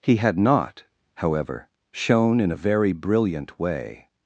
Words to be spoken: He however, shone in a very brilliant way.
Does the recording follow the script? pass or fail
fail